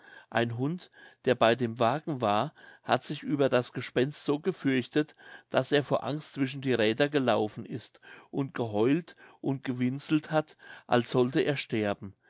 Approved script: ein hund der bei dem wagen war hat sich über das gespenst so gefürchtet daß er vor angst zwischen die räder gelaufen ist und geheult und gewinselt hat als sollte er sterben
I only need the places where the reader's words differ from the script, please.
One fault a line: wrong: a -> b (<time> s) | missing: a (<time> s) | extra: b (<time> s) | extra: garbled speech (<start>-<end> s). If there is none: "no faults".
no faults